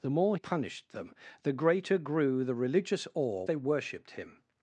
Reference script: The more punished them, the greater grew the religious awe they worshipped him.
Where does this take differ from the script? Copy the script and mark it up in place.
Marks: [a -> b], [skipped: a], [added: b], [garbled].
The more punished them, the greater grew the religious awe they worshipped him.